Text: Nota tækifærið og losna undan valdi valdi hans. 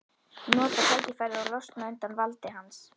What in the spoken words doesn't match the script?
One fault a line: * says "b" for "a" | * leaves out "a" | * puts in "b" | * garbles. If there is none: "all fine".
* leaves out "valdi"